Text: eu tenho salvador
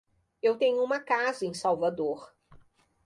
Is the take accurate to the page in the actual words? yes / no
no